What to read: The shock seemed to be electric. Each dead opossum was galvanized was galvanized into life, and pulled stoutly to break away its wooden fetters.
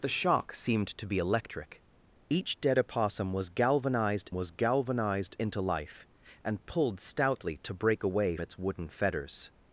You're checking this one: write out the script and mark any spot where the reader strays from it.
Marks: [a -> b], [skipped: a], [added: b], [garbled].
The shock seemed to be electric. Each dead opossum was galvanized was galvanized into life, and pulled stoutly to break away its wooden fetters.